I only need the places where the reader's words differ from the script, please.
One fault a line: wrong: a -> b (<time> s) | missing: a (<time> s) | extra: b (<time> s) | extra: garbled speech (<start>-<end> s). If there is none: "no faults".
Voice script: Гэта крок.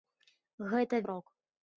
no faults